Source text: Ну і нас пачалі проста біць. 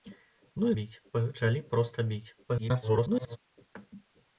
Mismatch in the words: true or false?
true